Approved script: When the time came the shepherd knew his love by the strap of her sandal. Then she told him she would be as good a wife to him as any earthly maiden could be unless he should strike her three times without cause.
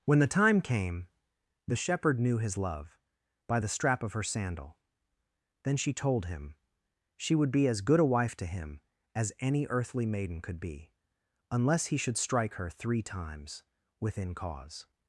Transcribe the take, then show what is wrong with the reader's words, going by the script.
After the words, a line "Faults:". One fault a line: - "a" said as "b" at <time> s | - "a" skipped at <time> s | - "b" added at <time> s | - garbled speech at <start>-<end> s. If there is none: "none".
When the time came the shepherd knew his love by the strap of her sandal. Then she told him she would be as good a wife to him as any earthly maiden could be unless he should strike her three times within cause.
Faults:
- "without" said as "within" at 14.0 s